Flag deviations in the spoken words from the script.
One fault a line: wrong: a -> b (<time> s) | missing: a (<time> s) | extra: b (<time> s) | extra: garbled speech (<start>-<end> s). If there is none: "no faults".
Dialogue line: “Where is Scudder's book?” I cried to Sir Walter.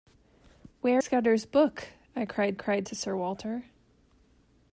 missing: is (1.0 s)
extra: cried (2.5 s)